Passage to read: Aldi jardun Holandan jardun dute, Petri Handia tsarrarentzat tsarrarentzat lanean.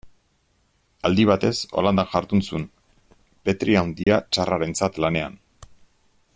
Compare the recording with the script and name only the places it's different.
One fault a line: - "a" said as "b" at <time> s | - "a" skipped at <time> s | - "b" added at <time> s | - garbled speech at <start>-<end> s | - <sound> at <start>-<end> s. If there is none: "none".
- "jardun" said as "batez" at 1.3 s
- "dute" said as "zuen" at 2.5 s
- dropout at 4.0-4.1 s
- "tsarrarentzat" skipped at 5.0 s